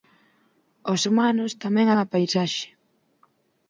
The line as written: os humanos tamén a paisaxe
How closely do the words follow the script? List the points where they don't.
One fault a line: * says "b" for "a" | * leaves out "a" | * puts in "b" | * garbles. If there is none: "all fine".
all fine